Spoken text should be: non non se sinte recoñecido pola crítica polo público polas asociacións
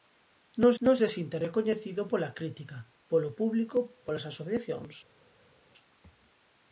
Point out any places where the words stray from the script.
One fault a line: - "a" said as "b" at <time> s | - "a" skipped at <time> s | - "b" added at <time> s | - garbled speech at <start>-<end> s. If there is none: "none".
none